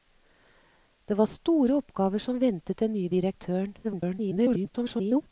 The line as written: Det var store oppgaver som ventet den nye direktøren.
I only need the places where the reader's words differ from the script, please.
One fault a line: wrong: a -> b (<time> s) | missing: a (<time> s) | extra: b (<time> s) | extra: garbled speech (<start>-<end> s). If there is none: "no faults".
extra: garbled speech (3.8-5.2 s)